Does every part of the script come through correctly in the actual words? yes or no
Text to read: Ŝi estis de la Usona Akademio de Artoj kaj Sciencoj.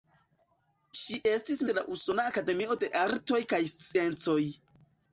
yes